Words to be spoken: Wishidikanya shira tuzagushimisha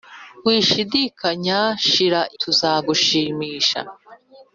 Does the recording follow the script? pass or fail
pass